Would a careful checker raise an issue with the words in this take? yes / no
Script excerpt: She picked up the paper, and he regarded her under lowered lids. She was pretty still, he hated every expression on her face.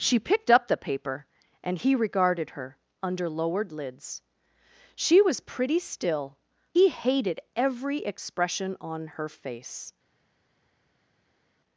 no